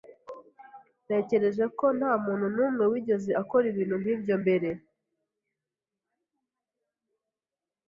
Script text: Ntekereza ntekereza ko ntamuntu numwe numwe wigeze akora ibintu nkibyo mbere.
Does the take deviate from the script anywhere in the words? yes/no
yes